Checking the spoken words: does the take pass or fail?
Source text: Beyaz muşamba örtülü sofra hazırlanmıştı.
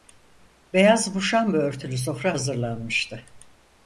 pass